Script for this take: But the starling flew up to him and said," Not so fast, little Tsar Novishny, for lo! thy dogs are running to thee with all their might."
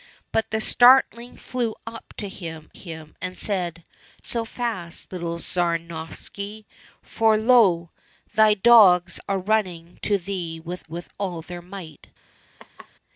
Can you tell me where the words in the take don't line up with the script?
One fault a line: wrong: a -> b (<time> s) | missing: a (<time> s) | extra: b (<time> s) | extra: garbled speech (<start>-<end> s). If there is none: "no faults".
extra: him (2.7 s)
missing: Not (3.8 s)
extra: with (10.8 s)